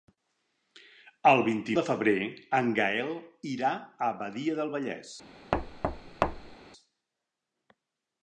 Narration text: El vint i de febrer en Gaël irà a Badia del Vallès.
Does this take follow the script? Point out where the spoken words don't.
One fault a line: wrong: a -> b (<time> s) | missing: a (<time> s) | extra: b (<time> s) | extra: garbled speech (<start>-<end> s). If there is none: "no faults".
no faults